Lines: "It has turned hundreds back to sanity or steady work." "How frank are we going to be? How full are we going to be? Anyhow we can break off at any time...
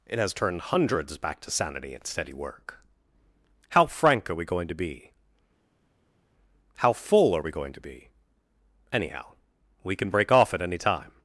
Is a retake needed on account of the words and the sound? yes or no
yes